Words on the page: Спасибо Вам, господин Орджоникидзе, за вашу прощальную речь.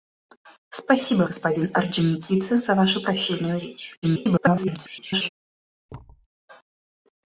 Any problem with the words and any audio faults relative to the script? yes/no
yes